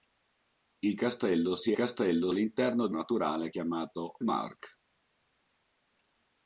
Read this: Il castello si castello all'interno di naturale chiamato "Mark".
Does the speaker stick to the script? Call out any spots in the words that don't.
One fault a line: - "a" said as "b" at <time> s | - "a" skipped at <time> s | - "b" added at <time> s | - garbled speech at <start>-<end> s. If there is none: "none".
none